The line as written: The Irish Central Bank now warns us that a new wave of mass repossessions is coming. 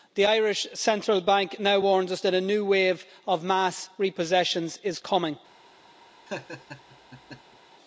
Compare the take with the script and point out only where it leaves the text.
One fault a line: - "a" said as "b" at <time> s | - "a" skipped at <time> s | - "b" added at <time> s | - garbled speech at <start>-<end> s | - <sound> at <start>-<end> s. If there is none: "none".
- laugh at 6.3-7.6 s